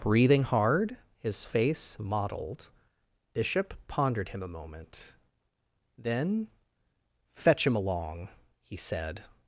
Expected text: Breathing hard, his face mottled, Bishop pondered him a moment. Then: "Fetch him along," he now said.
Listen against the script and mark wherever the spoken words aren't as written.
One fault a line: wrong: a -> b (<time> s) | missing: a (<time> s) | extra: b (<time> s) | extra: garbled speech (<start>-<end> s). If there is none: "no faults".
missing: now (8.8 s)